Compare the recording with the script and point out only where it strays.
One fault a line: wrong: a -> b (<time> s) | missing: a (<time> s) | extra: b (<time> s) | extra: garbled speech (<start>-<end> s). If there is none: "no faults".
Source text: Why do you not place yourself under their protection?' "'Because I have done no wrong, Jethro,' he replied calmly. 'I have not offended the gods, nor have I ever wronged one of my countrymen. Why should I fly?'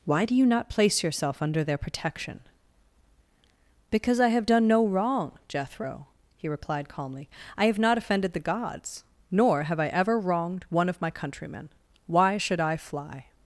no faults